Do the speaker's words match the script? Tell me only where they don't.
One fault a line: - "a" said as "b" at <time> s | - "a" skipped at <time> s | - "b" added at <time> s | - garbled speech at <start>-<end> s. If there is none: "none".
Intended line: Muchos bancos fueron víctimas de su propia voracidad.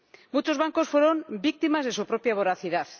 none